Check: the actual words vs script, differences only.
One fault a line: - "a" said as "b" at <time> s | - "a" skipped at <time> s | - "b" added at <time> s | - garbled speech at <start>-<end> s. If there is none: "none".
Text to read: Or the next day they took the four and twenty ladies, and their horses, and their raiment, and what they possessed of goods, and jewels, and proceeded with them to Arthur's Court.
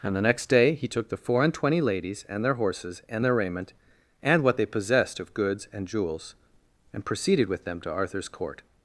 - "Or" said as "And" at 0.0 s
- "they" said as "he" at 0.7 s